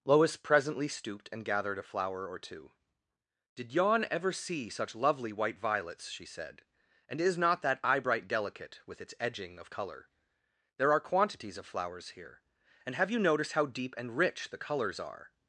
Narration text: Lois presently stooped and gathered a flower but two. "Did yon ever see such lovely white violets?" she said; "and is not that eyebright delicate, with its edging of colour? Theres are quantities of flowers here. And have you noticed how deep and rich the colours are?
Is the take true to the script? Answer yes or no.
no